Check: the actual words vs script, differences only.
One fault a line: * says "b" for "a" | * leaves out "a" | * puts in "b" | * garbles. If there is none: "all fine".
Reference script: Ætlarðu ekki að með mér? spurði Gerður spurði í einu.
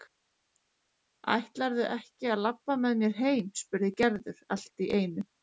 * puts in "labba"
* puts in "heim"
* says "allt" for "spurði"